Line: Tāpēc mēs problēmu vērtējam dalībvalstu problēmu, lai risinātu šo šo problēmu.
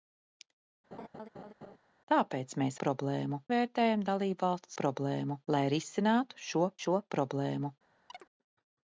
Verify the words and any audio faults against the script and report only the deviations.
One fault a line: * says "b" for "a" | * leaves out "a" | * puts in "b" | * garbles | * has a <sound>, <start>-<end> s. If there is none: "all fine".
* has a laugh, 0.9-1.8 s
* has a chirp, 8.1-8.3 s